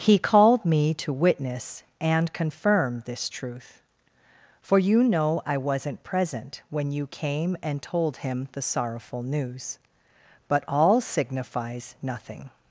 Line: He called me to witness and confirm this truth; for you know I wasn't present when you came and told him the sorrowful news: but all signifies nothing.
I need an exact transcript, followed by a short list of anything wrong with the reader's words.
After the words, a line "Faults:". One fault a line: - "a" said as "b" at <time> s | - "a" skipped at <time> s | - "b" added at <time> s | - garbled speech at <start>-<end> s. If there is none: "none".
He called me to witness and confirm this truth; for you know I wasn't present when you came and told him the sorrowful news: but all signifies nothing.
Faults:
none